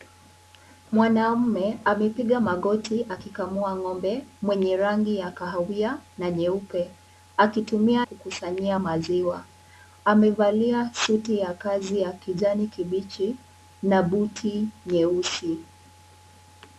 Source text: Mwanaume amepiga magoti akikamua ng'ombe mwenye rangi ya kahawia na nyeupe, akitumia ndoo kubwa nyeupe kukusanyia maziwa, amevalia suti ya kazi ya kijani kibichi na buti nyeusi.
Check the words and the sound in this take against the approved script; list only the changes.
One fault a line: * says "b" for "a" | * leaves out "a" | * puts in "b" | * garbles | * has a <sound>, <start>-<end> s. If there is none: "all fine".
* leaves out "ndoo kubwa nyeupe"